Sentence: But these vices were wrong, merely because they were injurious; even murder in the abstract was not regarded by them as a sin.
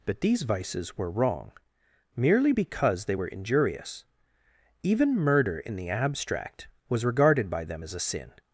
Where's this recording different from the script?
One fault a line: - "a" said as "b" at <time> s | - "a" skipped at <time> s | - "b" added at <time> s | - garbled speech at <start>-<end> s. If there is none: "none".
- "not" skipped at 7.0 s